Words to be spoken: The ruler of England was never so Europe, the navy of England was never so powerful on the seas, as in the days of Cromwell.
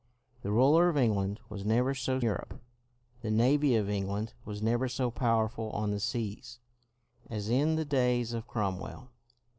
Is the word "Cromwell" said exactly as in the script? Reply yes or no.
yes